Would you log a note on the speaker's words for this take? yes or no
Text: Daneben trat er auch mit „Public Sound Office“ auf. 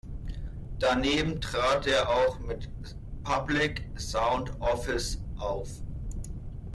no